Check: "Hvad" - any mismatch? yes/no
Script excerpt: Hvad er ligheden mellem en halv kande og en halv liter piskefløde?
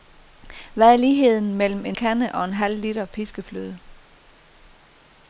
no